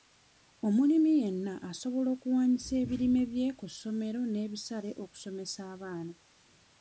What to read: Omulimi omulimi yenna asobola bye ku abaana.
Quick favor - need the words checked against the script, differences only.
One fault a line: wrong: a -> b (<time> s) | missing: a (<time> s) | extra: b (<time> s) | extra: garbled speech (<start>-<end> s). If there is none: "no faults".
missing: omulimi (1.1 s)
extra: okuwaanyisa ebirime (2.1 s)
extra: ssomero n'ebisale okusomesa (3.7 s)